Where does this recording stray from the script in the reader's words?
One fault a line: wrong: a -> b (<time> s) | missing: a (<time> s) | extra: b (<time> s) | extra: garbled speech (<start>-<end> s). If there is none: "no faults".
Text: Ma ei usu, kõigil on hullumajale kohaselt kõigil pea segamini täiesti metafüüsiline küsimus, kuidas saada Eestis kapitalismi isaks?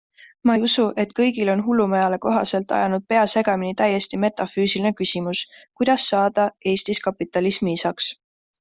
extra: et (1.0 s)
wrong: kõigil -> ajanud (2.8 s)